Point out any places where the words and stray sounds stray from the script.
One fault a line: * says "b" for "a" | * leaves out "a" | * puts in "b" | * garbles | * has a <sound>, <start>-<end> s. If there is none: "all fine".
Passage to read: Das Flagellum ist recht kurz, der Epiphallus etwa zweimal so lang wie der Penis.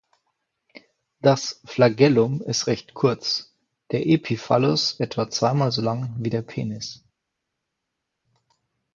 all fine